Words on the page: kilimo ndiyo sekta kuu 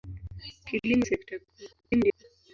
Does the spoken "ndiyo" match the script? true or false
false